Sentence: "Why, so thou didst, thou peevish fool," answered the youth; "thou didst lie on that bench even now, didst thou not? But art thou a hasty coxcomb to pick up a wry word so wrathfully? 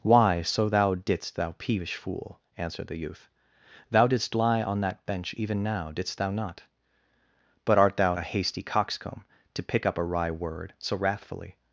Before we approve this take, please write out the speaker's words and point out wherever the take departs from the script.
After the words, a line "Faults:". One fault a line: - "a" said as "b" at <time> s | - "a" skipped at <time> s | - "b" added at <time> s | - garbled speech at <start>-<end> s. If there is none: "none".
"Why, so thou didst, thou peevish fool," answered the youth; "thou didst lie on that bench even now, didst thou not? But art thou a hasty coxcomb to pick up a wry word so wrathfully?
Faults:
none